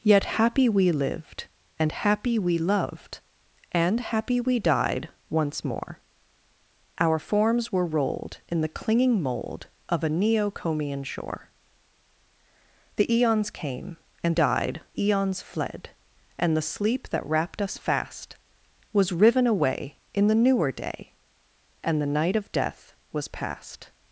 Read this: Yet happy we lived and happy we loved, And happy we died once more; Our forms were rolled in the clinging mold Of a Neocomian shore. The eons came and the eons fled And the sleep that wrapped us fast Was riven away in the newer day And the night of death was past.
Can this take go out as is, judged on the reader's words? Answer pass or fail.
fail